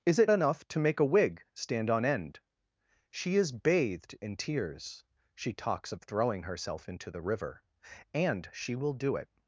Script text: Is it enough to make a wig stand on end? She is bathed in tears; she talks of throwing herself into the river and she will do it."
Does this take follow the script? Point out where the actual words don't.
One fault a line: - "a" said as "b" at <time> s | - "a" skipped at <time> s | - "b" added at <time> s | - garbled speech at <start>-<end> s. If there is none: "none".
none